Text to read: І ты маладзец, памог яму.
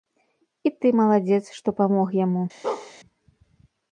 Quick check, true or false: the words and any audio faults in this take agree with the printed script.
false